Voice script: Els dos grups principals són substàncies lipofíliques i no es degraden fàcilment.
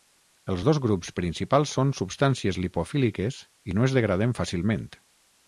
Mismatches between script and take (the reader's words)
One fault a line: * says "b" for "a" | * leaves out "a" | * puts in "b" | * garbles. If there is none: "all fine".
all fine